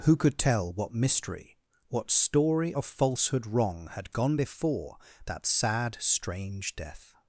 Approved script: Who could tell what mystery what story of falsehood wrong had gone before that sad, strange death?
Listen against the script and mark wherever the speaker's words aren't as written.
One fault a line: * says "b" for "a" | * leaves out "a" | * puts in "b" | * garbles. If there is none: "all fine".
all fine